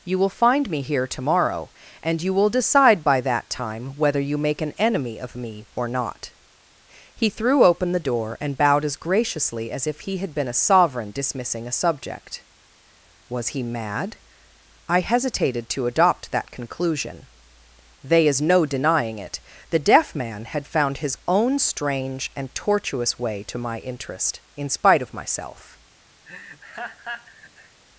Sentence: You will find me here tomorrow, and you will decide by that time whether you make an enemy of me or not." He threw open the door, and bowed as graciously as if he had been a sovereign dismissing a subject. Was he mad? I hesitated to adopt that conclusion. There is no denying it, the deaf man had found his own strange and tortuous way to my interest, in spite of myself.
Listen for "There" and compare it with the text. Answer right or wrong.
wrong